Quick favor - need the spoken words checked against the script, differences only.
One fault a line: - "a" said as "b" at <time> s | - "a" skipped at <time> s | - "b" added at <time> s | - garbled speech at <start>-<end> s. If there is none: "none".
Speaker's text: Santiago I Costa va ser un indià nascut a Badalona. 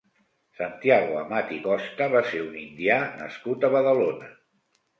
- "Amat" added at 1.2 s